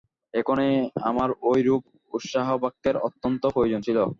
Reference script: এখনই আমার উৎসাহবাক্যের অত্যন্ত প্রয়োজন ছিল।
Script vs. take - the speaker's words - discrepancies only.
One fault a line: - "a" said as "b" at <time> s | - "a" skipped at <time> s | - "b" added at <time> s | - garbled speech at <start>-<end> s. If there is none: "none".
- "ঐরূপ" added at 1.4 s